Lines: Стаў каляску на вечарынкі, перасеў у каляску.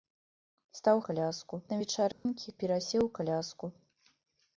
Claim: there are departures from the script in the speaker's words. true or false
false